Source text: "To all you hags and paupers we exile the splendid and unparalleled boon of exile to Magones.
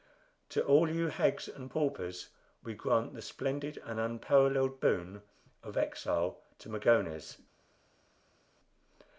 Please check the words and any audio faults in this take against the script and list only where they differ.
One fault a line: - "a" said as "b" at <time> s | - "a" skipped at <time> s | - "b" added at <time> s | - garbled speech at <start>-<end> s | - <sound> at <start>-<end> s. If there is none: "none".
- "exile" said as "grant" at 2.7 s